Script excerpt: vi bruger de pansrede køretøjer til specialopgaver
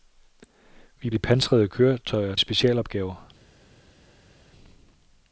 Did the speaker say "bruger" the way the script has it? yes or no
no